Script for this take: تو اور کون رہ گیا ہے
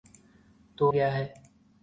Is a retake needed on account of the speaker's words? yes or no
yes